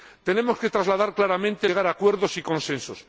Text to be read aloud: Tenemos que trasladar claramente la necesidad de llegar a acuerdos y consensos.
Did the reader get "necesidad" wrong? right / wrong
wrong